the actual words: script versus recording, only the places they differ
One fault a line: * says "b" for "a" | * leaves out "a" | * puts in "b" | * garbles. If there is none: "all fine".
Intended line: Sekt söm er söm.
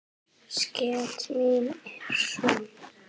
* says "mín" for "söm"